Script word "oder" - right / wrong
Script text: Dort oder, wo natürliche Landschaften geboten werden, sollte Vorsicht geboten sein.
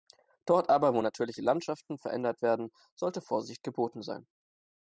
wrong